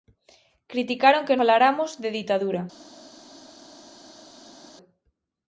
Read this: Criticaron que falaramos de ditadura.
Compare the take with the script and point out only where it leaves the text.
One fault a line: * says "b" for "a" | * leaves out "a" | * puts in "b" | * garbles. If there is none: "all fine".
all fine